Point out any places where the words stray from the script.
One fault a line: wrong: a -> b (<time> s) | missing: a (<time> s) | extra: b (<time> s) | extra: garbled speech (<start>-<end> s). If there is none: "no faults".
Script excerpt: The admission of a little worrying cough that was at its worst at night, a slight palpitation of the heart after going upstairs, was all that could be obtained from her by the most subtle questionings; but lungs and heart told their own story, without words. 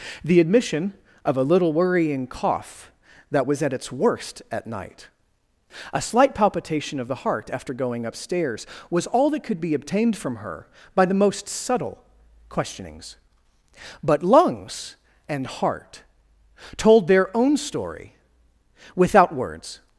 no faults